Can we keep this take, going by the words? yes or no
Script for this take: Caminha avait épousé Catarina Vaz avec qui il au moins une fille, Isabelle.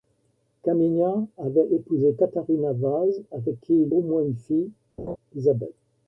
yes